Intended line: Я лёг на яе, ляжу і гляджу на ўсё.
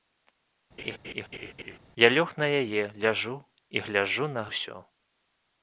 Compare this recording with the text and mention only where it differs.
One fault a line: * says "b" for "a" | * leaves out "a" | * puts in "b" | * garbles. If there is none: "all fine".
all fine